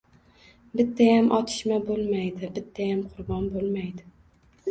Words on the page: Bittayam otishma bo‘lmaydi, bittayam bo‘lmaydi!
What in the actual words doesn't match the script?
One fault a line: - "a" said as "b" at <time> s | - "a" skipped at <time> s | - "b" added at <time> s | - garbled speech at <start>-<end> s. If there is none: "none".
- "qurbon" added at 3.1 s